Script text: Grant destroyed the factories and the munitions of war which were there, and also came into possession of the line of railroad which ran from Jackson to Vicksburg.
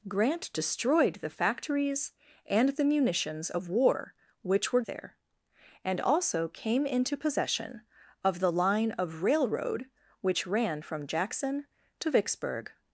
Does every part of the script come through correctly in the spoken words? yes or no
yes